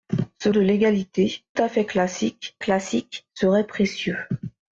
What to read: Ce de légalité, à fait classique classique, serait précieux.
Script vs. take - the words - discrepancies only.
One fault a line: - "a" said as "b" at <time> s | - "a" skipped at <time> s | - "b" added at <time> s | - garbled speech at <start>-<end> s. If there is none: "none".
none